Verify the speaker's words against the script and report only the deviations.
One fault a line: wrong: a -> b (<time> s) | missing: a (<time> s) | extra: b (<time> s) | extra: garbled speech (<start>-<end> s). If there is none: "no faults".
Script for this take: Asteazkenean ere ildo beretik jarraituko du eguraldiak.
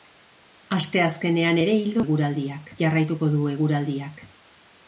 wrong: beretik -> eguraldiak (2.0 s)